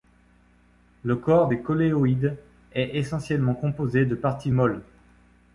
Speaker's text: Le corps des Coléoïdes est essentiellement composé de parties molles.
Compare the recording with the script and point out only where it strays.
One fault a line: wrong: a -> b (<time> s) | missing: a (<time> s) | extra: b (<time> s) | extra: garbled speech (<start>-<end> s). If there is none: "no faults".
no faults